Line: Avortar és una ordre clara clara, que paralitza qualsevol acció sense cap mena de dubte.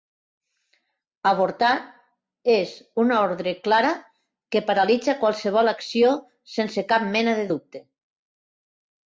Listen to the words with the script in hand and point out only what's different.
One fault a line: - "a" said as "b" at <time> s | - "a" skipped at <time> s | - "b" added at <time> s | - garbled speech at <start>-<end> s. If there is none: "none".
- "clara" skipped at 3.9 s